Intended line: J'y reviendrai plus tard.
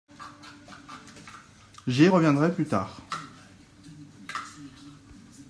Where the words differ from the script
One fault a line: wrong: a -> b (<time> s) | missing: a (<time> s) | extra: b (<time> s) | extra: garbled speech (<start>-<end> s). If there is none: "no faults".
no faults